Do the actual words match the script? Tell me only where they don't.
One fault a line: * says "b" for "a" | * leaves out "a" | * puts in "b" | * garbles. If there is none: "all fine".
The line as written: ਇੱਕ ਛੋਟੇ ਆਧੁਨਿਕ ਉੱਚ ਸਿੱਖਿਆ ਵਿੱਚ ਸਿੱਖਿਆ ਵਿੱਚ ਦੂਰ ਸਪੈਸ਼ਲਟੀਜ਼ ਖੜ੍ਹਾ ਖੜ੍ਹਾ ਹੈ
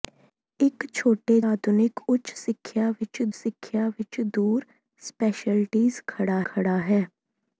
all fine